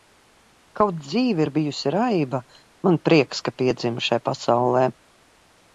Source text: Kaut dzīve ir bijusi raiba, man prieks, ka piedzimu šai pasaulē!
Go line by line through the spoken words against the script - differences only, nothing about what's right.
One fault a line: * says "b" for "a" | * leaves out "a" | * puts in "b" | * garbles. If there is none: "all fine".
all fine